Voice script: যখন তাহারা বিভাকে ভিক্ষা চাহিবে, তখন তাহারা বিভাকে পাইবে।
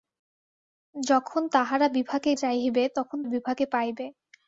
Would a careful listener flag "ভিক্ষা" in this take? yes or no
yes